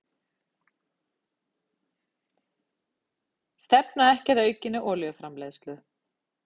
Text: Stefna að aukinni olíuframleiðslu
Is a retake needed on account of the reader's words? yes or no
yes